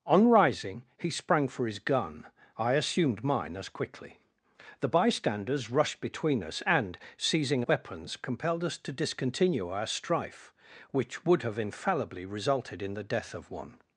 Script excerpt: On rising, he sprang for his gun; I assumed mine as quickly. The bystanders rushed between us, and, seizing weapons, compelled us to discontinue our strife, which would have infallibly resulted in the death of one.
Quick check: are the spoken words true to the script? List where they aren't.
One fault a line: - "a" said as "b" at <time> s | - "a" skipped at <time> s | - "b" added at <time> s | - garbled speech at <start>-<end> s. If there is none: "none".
none